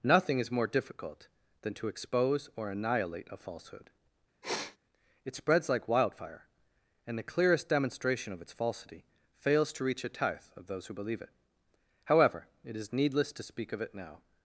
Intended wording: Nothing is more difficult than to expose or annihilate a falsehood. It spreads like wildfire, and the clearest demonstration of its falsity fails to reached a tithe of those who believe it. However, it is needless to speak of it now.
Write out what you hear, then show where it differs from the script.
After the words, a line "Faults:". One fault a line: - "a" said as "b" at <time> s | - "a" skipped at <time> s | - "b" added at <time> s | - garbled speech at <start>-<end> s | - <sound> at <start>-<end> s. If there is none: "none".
Nothing is more difficult than to expose or annihilate a falsehood. It spreads like wildfire, and the clearest demonstration of its falsity fails to reach a tithe of those who believe it. However, it is needless to speak of it now.
Faults:
- sneeze at 4.4-4.8 s
- "reached" said as "reach" at 9.8 s